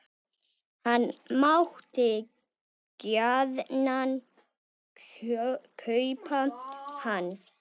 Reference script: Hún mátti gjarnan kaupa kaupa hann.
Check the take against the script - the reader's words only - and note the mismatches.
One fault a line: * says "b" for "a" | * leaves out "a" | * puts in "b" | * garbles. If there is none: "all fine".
* says "Hann" for "Hún"
* leaves out "kaupa"